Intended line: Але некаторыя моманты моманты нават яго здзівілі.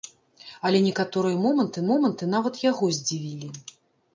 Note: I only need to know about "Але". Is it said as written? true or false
true